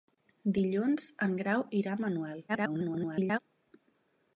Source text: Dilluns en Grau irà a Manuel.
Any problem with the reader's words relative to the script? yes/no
yes